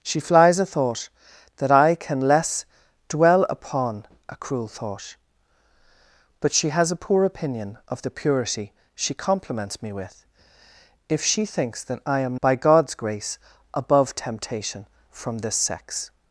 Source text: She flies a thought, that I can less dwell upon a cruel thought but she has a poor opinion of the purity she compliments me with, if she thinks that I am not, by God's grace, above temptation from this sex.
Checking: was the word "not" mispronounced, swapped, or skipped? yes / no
yes